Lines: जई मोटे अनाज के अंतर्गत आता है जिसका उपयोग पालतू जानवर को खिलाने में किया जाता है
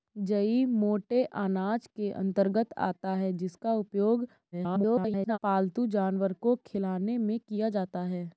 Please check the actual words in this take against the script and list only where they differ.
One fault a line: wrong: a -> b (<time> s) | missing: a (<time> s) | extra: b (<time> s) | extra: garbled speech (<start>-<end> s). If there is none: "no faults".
extra: garbled speech (4.5-5.4 s)